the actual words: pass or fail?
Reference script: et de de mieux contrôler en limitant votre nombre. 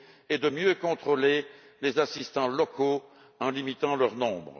fail